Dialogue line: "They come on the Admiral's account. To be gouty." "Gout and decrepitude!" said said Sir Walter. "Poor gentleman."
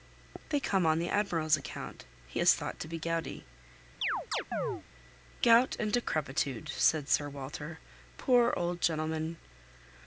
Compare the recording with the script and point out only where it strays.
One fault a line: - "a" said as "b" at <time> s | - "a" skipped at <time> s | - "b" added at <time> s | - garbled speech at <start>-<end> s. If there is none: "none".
- "He is thought" added at 2.3 s
- "said" skipped at 7.1 s
- "old" added at 8.6 s